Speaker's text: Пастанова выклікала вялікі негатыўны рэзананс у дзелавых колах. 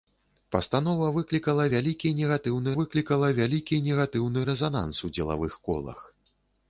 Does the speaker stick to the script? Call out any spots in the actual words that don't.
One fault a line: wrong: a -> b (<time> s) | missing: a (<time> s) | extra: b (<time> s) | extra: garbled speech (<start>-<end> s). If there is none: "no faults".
extra: выклікала вялікі негатыўны (2.8 s)